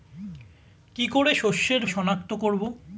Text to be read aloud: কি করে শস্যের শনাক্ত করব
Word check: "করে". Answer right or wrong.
right